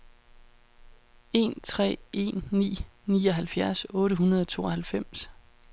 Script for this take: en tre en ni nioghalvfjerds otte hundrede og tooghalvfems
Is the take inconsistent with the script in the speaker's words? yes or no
no